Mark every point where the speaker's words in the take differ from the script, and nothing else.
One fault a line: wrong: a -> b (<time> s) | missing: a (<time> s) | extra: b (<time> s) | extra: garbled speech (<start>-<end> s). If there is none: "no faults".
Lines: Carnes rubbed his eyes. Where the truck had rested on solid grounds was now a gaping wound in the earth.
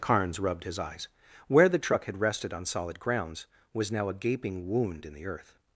no faults